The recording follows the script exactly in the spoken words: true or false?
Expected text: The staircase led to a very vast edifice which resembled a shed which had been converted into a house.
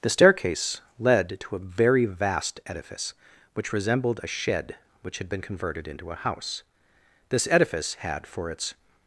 false